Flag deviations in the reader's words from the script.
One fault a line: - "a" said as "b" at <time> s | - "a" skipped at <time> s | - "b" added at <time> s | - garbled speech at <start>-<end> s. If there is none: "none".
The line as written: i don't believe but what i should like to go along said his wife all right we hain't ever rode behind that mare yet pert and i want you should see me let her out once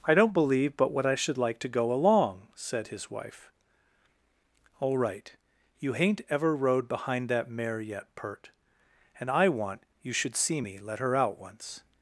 - "we" said as "you" at 5.8 s